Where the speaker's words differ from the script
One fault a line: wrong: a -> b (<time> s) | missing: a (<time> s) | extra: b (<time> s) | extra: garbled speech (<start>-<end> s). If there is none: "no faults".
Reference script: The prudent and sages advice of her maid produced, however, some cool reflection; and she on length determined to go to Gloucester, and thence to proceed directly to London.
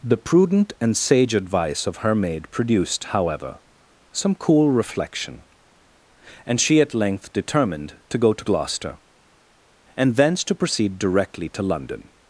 wrong: sages -> sage (1.0 s)
wrong: on -> at (6.8 s)